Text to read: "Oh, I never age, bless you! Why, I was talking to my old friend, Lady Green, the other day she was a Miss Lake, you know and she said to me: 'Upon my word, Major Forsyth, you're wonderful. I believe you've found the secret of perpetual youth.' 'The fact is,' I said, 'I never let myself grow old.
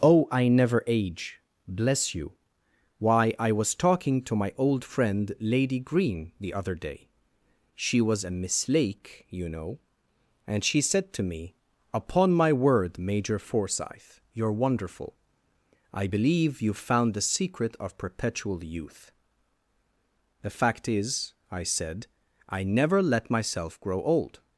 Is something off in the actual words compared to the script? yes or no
no